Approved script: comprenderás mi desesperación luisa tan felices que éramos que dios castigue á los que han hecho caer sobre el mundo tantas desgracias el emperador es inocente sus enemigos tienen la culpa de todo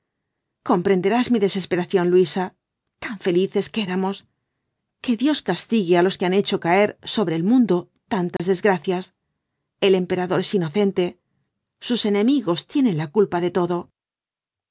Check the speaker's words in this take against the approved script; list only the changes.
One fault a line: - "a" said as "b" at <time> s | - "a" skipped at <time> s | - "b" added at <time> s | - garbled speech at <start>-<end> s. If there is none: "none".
none